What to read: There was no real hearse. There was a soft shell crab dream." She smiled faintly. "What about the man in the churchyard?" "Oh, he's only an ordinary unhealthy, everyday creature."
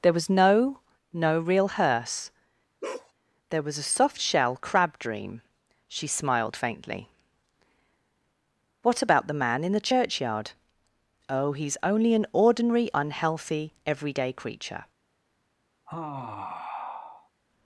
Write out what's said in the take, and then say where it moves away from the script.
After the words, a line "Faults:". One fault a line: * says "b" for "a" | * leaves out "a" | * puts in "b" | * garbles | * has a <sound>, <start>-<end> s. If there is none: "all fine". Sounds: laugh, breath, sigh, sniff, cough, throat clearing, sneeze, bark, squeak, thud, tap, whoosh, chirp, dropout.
There was no no real hearse. There was a soft shell crab dream." She smiled faintly. "What about the man in the churchyard?" "Oh, he's only an ordinary unhealthy, everyday creature."
Faults:
* puts in "no"
* has a bark, 2.8-3.1 s
* has a sigh, 15.9-17.3 s